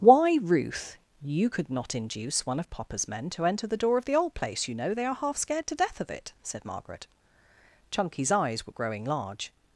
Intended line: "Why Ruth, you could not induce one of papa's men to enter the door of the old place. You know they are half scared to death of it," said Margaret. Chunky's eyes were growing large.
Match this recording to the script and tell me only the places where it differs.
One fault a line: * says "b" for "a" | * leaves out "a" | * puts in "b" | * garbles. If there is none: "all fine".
all fine